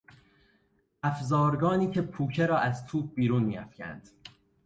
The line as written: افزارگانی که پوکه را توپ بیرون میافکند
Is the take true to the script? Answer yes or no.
no